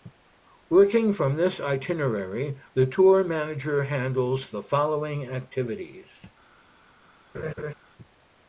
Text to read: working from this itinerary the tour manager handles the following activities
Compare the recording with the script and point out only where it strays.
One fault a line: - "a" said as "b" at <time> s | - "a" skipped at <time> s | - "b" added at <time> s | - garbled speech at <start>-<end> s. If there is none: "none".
none